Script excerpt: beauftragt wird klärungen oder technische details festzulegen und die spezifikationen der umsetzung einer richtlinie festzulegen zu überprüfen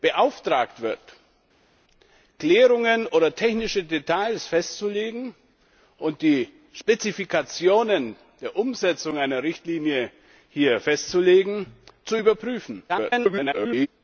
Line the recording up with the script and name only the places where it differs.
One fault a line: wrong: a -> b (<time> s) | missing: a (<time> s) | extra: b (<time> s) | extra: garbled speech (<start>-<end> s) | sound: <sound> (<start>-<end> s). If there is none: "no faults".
extra: garbled speech (12.9-13.9 s)